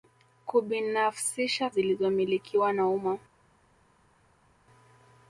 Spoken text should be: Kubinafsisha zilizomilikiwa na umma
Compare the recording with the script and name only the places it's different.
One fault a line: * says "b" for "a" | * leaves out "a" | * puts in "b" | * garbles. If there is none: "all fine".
all fine